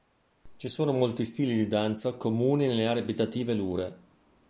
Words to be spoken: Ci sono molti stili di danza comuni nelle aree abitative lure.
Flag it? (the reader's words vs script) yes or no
no